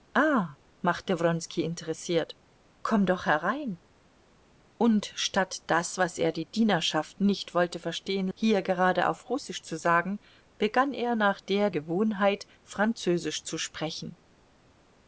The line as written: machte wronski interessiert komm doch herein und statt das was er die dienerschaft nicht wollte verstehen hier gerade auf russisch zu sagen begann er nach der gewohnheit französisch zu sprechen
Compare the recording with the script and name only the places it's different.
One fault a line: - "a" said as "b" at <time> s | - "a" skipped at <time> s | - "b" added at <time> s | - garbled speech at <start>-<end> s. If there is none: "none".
none